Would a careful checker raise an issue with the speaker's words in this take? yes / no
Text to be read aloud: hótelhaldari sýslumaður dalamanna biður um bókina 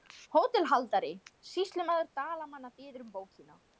no